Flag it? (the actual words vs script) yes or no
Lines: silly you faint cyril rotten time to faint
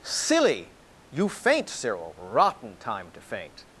no